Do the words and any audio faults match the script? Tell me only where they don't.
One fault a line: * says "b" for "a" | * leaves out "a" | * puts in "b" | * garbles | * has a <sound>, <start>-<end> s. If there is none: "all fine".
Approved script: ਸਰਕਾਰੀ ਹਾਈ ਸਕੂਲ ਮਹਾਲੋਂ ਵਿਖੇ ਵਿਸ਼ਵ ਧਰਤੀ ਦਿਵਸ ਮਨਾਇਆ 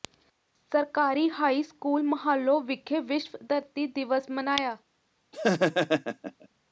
* has a laugh, 5.3-6.5 s